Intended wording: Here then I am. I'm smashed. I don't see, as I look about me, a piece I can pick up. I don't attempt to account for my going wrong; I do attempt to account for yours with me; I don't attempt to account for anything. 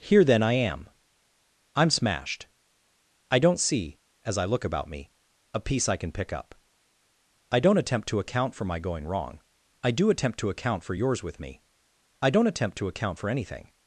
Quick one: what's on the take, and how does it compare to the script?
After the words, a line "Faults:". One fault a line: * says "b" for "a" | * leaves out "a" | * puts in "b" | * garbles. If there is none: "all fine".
Here then I am. I'm smashed. I don't see, as I look about me, a piece I can pick up. I don't attempt to account for my going wrong; I do attempt to account for yours with me; I don't attempt to account for anything.
Faults:
all fine